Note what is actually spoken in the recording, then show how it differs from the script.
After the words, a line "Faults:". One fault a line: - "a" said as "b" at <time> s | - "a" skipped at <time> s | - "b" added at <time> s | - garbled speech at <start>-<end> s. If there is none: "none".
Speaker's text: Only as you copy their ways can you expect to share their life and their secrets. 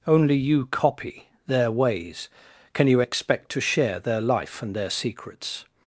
Only you copy their ways can you expect to share their life and their secrets.
Faults:
- "as" skipped at 0.3 s